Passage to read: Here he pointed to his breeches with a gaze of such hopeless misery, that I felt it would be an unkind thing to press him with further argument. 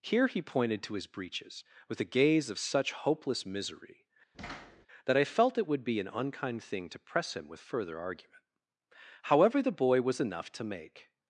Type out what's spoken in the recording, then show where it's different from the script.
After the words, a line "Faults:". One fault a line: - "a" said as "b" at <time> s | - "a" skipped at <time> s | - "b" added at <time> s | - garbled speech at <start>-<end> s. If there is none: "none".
Here he pointed to his breeches with a gaze of such hopeless misery, that I felt it would be an unkind thing to press him with further argument. However, the boy was enough to make
Faults:
- "However the boy was enough to make" added at 9.2 s